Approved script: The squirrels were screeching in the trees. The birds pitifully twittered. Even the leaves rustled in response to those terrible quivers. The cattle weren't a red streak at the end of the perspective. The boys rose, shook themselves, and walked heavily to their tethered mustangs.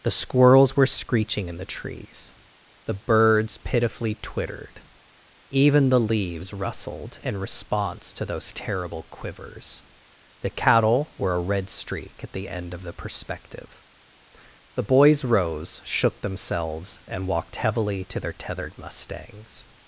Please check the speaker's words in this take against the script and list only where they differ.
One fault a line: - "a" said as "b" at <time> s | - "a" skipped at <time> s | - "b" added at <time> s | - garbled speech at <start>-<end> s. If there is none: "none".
- "weren't" said as "were" at 11.2 s